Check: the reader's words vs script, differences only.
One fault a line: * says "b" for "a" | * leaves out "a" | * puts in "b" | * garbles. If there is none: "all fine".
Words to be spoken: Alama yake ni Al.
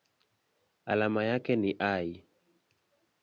all fine